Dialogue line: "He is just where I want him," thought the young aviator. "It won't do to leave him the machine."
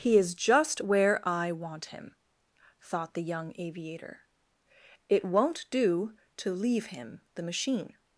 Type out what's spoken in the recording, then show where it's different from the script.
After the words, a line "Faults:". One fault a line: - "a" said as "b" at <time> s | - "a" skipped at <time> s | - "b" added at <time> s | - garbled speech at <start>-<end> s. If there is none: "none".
"He is just where I want him," thought the young aviator. "It won't do to leave him the machine."
Faults:
none